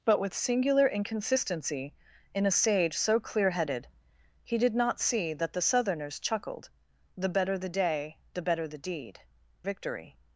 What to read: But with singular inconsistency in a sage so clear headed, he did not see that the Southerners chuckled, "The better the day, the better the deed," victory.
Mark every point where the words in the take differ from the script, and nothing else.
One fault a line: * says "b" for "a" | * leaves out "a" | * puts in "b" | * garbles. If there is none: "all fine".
all fine